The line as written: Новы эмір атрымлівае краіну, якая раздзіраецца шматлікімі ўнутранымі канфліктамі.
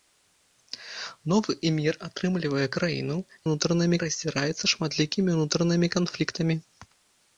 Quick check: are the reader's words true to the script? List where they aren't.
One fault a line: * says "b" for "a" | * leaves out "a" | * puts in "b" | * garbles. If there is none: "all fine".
* says "ўнутранымі" for "якая"